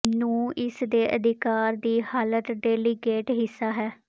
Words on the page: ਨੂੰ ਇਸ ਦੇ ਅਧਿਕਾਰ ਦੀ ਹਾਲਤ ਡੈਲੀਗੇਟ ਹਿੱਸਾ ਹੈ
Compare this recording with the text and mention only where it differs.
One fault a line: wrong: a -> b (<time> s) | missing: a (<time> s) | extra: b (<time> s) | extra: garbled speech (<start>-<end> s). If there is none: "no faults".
no faults